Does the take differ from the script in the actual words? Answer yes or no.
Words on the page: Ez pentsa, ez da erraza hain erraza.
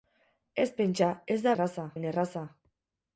no